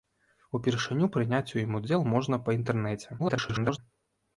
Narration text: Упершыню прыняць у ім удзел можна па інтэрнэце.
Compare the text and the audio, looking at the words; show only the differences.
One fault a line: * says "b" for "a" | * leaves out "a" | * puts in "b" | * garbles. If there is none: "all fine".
* garbles